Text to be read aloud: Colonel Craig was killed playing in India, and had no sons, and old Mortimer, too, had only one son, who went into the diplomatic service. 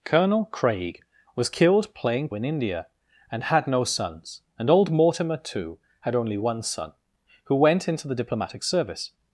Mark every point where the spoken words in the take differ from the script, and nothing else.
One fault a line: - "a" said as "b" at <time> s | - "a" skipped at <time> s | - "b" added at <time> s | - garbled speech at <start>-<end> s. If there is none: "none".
none